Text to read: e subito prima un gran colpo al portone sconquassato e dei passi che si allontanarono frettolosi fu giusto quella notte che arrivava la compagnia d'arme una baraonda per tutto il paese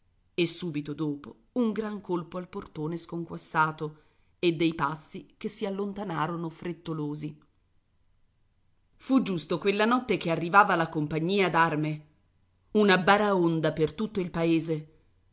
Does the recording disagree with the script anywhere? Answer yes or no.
yes